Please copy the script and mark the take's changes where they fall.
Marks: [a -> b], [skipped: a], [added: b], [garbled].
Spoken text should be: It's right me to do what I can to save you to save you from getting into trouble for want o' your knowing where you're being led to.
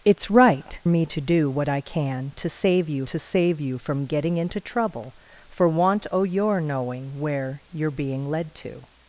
It's right me to do what I can to save you to save you from getting into trouble for want o' your knowing where you're being led to.